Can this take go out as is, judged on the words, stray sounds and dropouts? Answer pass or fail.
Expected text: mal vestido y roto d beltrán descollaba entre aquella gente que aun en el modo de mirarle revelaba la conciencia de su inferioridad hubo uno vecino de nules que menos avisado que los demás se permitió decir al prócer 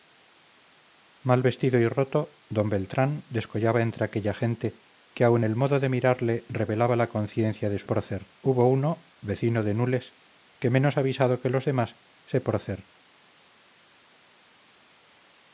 fail